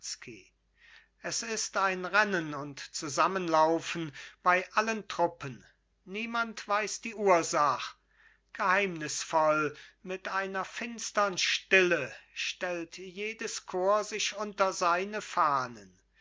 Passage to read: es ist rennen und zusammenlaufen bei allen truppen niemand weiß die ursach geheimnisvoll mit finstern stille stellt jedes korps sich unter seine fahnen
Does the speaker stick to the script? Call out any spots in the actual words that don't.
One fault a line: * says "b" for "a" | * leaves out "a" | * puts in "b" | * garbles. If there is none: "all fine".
* puts in "ein"
* puts in "einer"